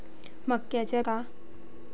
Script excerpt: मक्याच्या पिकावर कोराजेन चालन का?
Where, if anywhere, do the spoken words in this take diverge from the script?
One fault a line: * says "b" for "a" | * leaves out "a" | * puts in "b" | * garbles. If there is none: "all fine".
* leaves out "पिकावर कोराजेन चालन"